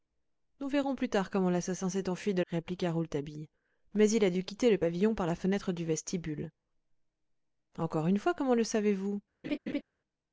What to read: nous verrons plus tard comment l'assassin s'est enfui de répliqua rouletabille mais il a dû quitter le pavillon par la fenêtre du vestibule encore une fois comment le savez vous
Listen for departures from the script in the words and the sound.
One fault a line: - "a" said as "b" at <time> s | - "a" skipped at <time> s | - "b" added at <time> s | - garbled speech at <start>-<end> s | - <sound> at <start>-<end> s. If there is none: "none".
- laugh at 9.4-9.8 s